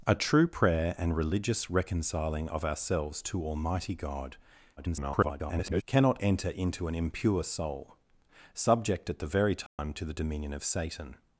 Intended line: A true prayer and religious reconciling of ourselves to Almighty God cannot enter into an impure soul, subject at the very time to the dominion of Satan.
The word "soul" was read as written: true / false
true